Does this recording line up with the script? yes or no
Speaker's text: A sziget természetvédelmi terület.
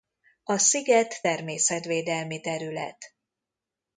yes